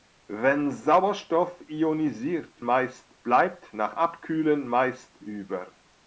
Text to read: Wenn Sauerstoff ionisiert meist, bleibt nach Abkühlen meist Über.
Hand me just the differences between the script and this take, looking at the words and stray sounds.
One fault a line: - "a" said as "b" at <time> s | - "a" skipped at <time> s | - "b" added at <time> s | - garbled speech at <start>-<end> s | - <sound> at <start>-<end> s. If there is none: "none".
none